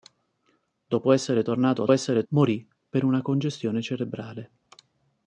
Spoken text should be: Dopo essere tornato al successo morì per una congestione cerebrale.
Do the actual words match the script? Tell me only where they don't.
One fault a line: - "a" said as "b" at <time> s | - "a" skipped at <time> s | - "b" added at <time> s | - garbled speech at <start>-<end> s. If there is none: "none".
- "successo" said as "essere" at 1.9 s